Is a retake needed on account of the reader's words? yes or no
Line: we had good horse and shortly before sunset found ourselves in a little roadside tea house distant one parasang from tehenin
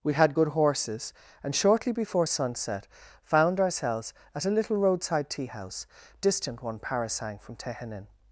yes